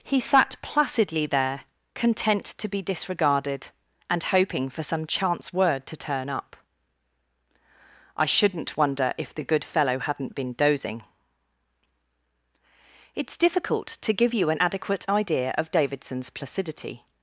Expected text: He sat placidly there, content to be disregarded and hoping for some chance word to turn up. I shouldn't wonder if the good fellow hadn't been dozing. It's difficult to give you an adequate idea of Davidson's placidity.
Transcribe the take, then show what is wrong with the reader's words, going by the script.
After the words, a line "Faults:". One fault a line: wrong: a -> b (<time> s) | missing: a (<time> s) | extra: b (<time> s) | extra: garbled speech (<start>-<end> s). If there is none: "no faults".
He sat placidly there, content to be disregarded and hoping for some chance word to turn up. I shouldn't wonder if the good fellow hadn't been dozing. It's difficult to give you an adequate idea of Davidson's placidity.
Faults:
no faults